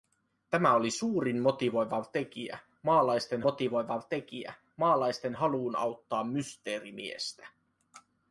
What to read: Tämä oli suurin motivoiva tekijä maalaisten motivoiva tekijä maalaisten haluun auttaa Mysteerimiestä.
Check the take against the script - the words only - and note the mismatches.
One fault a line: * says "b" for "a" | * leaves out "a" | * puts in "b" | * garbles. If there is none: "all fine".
all fine